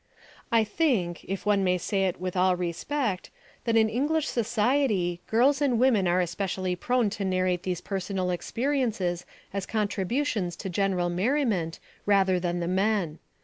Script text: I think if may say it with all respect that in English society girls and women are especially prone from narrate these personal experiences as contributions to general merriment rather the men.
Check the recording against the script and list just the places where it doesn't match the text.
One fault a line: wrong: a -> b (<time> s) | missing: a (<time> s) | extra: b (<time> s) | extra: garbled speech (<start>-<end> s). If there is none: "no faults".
extra: one (1.4 s)
wrong: from -> to (7.1 s)
extra: than (12.4 s)